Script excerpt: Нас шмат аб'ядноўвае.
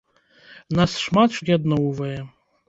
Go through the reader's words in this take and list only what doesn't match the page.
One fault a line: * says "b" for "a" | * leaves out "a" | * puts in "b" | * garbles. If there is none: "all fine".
all fine